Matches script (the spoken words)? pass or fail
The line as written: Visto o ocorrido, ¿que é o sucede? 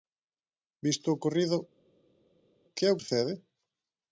pass